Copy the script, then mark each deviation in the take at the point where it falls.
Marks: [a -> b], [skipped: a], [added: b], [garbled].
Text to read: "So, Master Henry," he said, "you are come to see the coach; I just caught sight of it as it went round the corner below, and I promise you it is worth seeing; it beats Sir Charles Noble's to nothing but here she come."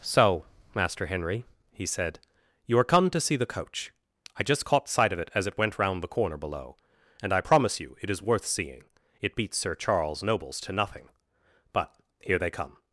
"So, Master Henry," he said, "you are come to see the coach; I just caught sight of it as it went round the corner below, and I promise you it is worth seeing; it beats Sir Charles Noble's to nothing but here [she -> they] come."